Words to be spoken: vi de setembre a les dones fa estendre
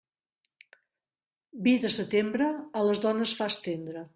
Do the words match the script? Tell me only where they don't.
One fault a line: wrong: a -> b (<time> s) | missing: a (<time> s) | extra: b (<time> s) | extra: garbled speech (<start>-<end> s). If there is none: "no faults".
no faults